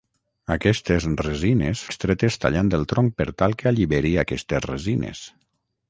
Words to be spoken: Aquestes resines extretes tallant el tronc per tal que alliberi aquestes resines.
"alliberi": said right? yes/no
yes